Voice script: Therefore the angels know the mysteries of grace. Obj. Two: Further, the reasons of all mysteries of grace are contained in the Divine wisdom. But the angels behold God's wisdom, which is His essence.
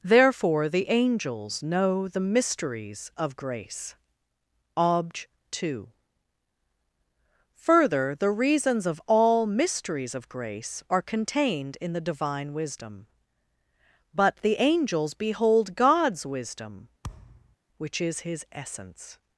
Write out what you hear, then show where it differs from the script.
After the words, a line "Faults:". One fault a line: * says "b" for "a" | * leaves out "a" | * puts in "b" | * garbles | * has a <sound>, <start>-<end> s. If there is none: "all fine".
Therefore the angels know the mysteries of grace. Obj. Two: Further, the reasons of all mysteries of grace are contained in the Divine wisdom. But the angels behold God's wisdom, which is His essence.
Faults:
* has a thud, 17.0-17.6 s